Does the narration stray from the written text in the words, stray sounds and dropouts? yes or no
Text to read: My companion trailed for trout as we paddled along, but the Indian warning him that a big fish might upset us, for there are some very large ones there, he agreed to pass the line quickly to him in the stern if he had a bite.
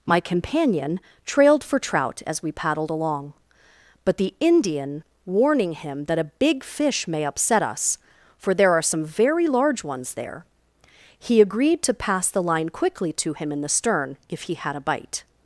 yes